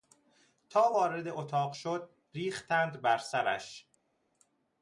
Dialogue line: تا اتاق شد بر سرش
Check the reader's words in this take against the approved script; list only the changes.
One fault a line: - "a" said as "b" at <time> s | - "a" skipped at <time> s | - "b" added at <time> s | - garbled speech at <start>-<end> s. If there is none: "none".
- "وارد" added at 0.9 s
- "ریختند" added at 2.3 s